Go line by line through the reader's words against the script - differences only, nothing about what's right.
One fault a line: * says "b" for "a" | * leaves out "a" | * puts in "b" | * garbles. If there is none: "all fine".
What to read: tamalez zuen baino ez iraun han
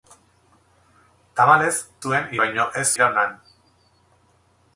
all fine